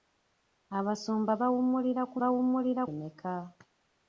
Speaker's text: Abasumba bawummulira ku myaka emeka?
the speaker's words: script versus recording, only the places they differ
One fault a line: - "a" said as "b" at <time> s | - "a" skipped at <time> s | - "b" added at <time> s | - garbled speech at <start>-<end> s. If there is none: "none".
- "myaka" said as "bawummulira" at 2.2 s